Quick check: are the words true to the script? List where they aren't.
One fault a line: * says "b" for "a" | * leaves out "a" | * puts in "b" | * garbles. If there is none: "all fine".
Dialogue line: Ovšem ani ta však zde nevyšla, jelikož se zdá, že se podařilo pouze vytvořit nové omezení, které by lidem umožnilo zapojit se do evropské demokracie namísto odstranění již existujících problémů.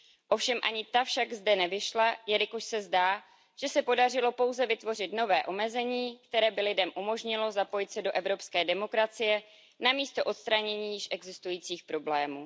all fine